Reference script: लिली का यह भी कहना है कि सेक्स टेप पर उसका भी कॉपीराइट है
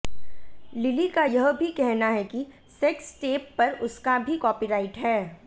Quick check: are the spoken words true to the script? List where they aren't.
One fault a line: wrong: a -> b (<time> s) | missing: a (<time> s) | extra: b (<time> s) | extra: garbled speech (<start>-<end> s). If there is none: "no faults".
no faults